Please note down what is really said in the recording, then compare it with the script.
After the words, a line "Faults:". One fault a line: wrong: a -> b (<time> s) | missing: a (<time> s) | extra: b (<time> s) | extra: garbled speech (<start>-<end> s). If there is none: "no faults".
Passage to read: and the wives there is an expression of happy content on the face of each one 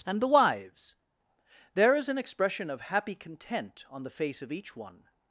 and the wives there is an expression of happy content on the face of each one
Faults:
no faults